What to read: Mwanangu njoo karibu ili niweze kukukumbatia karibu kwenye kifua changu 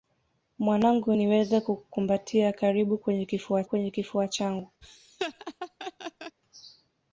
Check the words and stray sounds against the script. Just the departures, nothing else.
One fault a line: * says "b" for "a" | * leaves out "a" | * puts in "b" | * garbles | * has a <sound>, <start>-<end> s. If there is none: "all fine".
* leaves out "njoo karibu ili"
* puts in "kwenye kifua"
* has a laugh, 4.8-6.4 s